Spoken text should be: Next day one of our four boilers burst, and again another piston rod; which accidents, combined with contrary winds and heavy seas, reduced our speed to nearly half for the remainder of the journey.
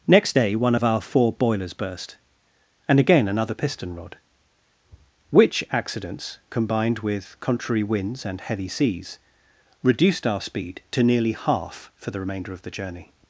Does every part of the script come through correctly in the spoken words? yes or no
yes